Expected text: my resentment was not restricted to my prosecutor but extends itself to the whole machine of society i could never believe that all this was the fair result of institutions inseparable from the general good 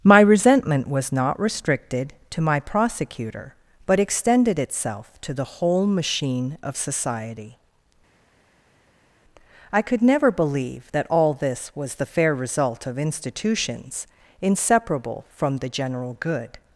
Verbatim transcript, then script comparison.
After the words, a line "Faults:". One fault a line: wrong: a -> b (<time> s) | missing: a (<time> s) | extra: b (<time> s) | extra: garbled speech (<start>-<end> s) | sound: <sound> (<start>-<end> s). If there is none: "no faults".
my resentment was not restricted to my prosecutor but extended itself to the whole machine of society i could never believe that all this was the fair result of institutions inseparable from the general good
Faults:
wrong: extends -> extended (4.0 s)